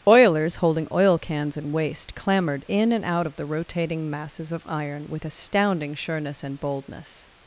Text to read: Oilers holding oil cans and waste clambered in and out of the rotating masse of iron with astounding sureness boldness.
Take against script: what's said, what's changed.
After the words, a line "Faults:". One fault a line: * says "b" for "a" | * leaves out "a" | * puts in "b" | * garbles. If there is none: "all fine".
Oilers holding oil cans and waste clambered in and out of the rotating masses of iron with astounding sureness and boldness.
Faults:
* says "masses" for "masse"
* puts in "and"